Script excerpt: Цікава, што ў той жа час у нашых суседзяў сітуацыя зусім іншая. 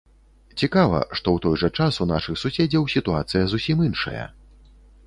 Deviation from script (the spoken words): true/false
false